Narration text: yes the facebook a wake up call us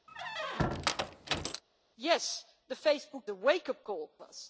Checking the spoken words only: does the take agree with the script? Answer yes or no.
yes